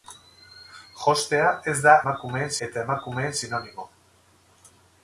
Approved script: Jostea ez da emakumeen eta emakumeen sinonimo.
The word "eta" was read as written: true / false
true